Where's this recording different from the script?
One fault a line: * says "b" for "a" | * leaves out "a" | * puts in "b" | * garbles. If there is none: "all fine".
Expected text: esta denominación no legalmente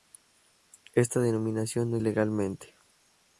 all fine